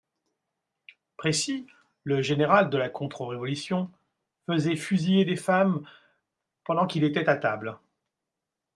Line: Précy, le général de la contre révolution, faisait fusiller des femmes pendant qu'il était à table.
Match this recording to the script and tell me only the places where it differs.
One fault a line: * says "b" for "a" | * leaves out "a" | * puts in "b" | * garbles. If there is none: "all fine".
all fine